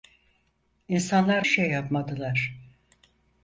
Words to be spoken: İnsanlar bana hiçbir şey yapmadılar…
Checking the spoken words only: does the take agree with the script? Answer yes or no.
no